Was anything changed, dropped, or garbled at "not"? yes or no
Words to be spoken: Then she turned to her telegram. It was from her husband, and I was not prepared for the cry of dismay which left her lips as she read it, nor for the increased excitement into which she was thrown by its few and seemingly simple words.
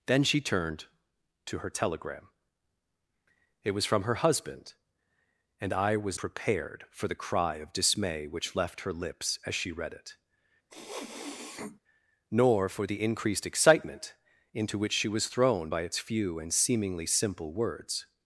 yes